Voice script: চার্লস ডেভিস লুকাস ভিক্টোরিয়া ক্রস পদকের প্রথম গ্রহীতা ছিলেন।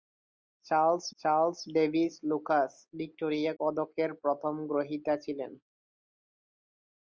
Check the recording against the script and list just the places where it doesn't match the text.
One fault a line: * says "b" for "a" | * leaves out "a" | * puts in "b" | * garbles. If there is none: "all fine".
* puts in "চার্লস"
* leaves out "ক্রস"